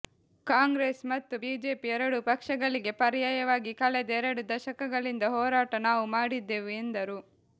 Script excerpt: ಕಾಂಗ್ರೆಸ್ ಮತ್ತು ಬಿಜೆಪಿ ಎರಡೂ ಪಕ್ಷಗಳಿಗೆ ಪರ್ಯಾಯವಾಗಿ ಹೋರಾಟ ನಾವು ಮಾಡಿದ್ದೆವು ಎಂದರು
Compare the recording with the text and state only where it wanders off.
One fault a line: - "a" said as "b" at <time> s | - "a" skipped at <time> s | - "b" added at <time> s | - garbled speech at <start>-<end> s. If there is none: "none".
- "ಕಳೆದ ಎರಡು ದಶಕಗಳಿಂದ" added at 3.8 s